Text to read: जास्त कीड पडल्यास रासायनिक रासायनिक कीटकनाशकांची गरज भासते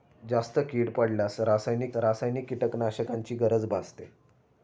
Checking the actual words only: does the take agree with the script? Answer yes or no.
yes